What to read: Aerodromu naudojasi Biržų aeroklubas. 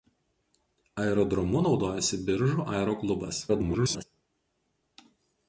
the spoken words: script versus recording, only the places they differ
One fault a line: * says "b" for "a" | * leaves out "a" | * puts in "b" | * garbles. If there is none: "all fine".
* garbles